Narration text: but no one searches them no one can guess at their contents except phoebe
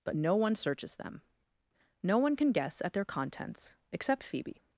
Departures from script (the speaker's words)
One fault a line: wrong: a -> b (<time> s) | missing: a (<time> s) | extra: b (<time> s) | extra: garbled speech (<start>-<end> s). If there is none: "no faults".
no faults